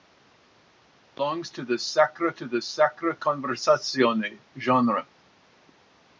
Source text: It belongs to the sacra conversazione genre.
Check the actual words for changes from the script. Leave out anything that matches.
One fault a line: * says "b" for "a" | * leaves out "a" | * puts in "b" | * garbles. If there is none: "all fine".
* puts in "to the sacra"